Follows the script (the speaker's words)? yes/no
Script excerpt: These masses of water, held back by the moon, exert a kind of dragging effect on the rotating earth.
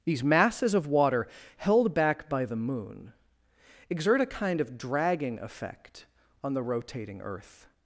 yes